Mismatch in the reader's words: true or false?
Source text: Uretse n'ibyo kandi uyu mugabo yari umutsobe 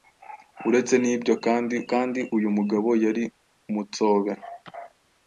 true